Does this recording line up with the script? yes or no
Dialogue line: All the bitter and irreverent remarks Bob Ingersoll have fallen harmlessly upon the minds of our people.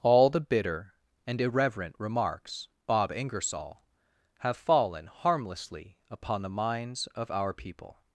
yes